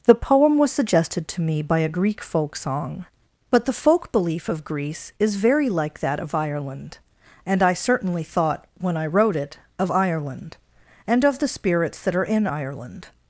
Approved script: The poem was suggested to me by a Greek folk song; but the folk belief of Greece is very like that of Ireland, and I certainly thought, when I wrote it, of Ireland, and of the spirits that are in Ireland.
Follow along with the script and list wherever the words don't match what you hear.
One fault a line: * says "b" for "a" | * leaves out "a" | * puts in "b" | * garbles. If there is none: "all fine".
all fine